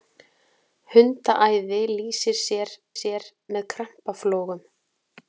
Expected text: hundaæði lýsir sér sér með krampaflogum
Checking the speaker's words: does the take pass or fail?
pass